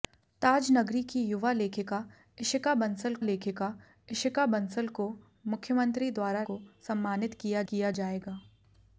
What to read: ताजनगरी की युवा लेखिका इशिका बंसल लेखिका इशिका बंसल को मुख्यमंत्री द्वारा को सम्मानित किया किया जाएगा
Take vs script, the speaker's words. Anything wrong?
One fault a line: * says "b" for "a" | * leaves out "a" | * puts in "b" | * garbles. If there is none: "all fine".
all fine